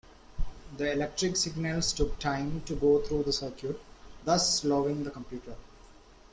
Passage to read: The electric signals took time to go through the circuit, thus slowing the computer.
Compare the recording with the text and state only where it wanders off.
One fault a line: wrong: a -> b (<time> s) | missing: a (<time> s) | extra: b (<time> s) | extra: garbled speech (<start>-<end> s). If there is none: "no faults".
no faults